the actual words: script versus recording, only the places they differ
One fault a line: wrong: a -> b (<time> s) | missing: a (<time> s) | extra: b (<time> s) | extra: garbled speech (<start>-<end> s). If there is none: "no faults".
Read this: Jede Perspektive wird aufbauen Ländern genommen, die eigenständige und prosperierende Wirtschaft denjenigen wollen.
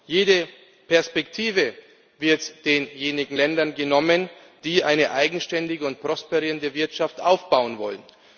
wrong: aufbauen -> denjenigen (2.6 s)
extra: eine (4.8 s)
wrong: denjenigen -> aufbauen (7.2 s)